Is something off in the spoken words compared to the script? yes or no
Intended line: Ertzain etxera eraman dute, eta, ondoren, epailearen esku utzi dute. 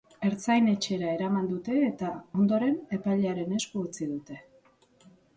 no